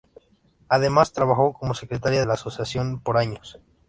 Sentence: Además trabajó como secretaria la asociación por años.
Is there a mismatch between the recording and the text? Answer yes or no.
no